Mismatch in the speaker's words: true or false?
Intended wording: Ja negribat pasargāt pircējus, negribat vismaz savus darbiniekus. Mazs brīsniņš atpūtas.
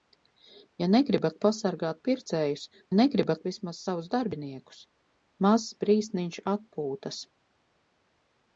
false